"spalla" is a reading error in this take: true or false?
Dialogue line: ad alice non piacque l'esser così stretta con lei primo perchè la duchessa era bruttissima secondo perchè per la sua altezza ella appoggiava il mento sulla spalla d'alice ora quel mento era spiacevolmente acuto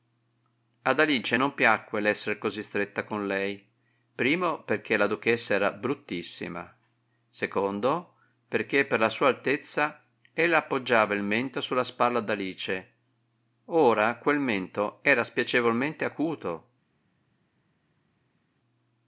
false